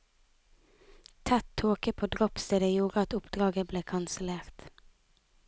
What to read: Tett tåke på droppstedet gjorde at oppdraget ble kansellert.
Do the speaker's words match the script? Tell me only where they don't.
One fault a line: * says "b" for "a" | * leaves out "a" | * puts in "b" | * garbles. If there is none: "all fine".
all fine